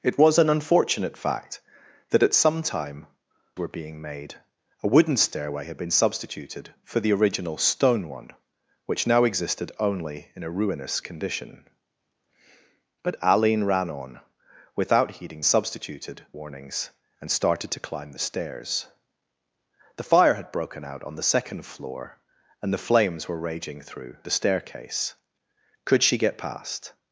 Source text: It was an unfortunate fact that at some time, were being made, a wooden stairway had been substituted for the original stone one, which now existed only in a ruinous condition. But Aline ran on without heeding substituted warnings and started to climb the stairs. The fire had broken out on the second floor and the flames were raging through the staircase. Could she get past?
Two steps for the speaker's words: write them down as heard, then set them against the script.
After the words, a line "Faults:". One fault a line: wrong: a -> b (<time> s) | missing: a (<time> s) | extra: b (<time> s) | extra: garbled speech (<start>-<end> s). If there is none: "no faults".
It was an unfortunate fact that at some time, were being made, a wooden stairway had been substituted for the original stone one, which now existed only in a ruinous condition. But Aline ran on without heeding substituted warnings and started to climb the stairs. The fire had broken out on the second floor and the flames were raging through the staircase. Could she get past?
Faults:
no faults